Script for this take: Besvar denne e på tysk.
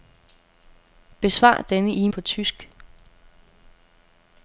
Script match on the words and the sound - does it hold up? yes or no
yes